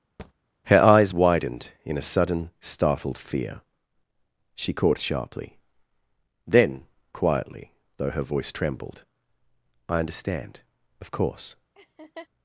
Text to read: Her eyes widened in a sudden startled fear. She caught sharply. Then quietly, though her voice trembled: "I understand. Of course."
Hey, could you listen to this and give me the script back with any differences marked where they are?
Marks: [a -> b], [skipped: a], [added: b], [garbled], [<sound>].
[thud] Her eyes widened in a sudden startled fear. She caught sharply. Then quietly, though her voice trembled: "I understand. Of course." [laugh]